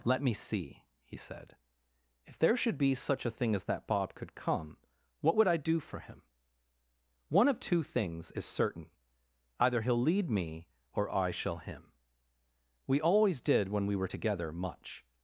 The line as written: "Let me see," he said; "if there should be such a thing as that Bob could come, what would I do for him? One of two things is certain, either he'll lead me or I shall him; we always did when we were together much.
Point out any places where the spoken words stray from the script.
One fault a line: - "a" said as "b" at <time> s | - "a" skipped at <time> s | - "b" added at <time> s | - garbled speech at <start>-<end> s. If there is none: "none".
none